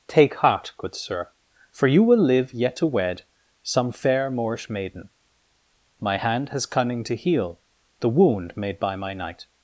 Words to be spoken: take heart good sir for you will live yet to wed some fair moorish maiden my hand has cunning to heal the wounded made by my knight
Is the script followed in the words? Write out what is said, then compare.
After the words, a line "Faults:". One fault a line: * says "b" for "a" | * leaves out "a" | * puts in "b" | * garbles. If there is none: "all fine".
take heart good sir for you will live yet to wed some fair moorish maiden my hand has cunning to heal the wound made by my knight
Faults:
* says "wound" for "wounded"